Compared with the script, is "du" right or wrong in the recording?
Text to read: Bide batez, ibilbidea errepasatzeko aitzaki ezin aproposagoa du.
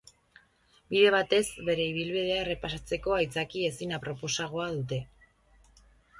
wrong